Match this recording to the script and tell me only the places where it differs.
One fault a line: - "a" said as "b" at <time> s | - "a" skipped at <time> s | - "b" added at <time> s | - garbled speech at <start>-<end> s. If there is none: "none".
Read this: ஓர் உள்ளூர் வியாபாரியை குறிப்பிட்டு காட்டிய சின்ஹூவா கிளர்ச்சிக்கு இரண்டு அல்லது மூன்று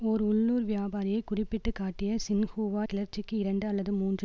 none